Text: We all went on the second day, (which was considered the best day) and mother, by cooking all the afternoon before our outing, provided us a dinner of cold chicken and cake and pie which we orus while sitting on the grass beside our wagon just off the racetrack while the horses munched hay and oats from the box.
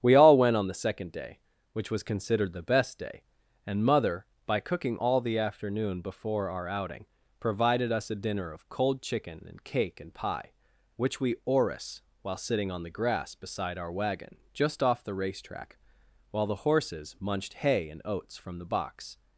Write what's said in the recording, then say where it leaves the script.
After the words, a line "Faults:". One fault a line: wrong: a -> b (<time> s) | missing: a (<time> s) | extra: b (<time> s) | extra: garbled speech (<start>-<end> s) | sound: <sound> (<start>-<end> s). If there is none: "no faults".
We all went on the second day, (which was considered the best day) and mother, by cooking all the afternoon before our outing, provided us a dinner of cold chicken and cake and pie which we orus while sitting on the grass beside our wagon just off the racetrack while the horses munched hay and oats from the box.
Faults:
no faults